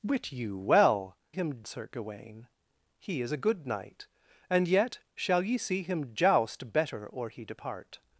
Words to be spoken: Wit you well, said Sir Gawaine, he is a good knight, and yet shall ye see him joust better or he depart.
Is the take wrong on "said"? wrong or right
wrong